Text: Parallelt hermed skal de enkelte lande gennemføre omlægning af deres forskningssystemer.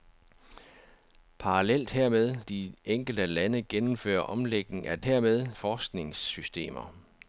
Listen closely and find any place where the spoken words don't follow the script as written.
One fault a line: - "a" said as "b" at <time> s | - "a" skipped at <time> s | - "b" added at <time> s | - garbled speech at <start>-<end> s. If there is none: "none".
- "skal" skipped at 2.4 s
- "deres" said as "hermed" at 5.0 s